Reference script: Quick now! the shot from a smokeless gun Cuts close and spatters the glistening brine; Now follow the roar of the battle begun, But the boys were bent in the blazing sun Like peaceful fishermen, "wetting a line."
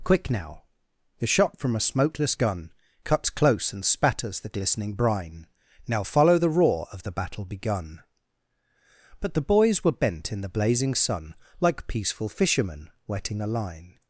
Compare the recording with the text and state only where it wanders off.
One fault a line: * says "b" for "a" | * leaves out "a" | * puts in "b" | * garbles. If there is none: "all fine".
all fine